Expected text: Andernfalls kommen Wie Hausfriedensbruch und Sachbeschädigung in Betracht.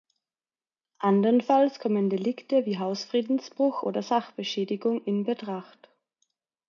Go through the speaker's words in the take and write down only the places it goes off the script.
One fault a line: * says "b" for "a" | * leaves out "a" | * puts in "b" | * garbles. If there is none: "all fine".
* puts in "Delikte"
* says "oder" for "und"